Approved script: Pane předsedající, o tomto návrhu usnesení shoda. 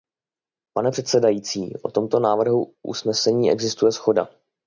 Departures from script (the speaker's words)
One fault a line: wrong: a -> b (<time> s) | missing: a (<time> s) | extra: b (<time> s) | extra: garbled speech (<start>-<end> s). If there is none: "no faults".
extra: existuje (3.5 s)